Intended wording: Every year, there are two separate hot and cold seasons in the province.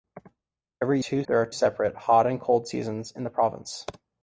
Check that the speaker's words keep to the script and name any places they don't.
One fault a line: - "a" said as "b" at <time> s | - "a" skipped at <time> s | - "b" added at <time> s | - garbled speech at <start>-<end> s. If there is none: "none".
- "year" said as "two" at 1.0 s
- "two" skipped at 1.5 s